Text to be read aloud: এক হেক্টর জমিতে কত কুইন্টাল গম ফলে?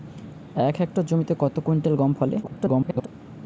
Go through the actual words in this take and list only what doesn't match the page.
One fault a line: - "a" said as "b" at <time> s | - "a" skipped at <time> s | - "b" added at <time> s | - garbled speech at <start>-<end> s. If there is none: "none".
- garbled speech at 2.4-3.1 s